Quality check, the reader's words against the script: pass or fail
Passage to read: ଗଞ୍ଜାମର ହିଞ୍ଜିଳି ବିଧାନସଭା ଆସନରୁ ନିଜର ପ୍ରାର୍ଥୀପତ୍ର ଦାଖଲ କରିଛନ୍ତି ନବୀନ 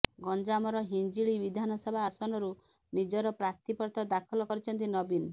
pass